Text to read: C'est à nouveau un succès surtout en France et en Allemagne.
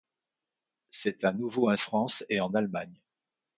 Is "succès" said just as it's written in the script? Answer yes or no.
no